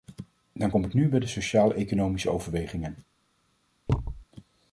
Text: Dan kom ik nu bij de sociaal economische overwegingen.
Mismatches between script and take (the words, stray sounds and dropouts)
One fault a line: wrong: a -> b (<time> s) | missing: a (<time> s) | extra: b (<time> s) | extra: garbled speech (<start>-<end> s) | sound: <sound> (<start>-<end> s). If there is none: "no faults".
sound: thud (3.9-4.2 s)